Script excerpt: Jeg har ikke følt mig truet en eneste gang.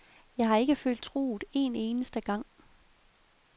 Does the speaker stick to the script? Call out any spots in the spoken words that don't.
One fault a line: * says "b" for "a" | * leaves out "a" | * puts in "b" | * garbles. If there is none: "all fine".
* leaves out "mig"